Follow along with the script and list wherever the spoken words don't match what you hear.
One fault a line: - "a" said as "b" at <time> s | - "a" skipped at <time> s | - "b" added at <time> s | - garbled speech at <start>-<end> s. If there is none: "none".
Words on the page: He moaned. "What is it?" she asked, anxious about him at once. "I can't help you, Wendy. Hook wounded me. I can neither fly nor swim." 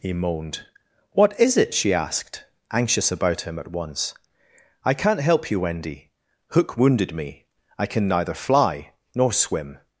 none